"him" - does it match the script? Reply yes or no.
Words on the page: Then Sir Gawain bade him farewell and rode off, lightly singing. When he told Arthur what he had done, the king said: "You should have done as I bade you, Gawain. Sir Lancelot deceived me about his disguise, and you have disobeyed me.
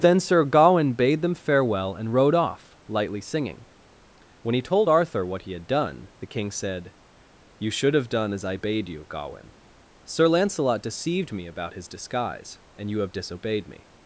no